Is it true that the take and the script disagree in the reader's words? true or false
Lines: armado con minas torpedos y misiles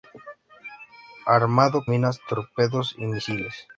true